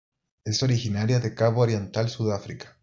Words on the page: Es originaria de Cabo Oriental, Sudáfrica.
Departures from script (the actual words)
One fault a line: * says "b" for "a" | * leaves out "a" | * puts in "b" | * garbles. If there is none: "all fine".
all fine